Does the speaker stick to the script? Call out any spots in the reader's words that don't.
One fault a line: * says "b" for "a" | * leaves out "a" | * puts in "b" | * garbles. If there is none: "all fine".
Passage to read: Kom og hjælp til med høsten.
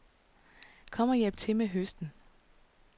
all fine